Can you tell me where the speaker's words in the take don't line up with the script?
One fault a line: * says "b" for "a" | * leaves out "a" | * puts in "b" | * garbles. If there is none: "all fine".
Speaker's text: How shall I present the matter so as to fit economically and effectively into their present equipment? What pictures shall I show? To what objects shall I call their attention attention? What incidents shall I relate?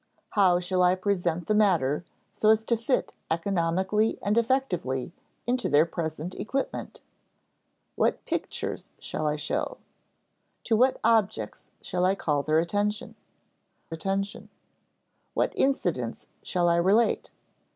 all fine